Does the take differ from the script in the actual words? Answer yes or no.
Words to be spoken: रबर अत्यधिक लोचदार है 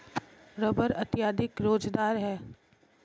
no